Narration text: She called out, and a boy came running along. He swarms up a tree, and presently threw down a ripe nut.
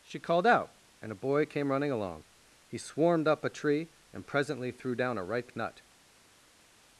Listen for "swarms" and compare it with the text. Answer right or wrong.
wrong